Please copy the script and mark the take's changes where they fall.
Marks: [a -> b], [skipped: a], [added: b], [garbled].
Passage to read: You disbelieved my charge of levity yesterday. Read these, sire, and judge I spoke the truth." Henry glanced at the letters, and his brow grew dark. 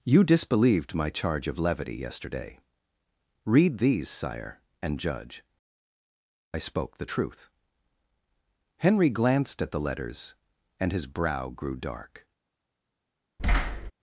You disbelieved my charge of levity yesterday. Read these, sire, and judge I spoke the truth." Henry glanced at the letters, and his brow grew dark.